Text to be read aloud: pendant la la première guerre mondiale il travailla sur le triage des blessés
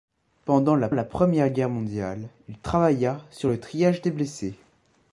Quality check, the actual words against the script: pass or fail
pass